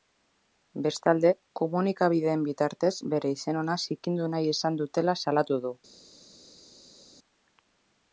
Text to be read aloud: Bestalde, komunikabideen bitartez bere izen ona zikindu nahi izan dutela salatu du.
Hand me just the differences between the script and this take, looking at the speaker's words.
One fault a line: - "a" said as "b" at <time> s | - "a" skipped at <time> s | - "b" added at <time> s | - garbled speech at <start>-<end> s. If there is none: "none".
none